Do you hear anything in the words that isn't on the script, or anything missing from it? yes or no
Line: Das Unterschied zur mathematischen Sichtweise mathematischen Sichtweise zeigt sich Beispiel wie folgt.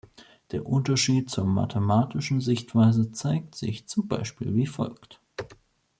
yes